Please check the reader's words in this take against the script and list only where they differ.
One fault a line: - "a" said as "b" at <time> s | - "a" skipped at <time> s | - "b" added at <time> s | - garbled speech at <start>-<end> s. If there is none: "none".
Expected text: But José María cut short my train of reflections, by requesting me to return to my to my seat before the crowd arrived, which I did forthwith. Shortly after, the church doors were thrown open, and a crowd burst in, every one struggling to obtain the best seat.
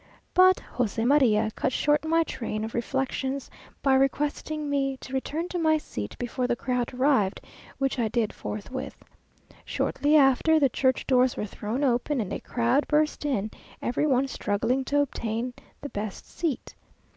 - "to my" skipped at 5.8 s